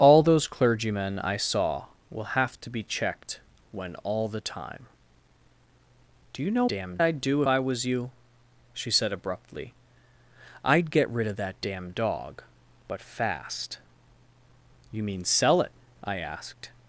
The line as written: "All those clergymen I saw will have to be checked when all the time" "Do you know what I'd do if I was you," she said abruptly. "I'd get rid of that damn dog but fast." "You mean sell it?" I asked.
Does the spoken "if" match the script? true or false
false